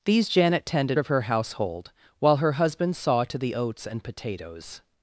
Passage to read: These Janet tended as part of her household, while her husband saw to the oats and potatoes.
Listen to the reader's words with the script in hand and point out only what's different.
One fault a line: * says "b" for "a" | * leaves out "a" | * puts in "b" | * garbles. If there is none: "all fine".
* leaves out "as part"